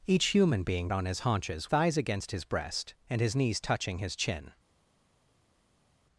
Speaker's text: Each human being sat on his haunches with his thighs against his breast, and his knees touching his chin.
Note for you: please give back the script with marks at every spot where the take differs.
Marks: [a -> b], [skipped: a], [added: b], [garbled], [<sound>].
Each human being [skipped: sat] on his haunches [skipped: with his] thighs against his breast, and his knees touching his chin.